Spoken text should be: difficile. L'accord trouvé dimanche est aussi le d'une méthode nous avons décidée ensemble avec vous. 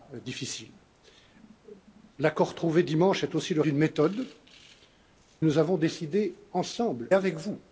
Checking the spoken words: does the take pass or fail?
pass